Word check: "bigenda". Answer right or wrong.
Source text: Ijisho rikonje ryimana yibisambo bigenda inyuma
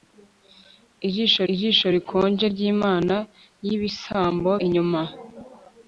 wrong